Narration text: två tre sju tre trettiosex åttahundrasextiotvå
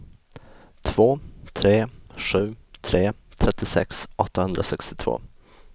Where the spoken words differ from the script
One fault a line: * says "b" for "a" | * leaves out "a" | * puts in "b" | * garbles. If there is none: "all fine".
all fine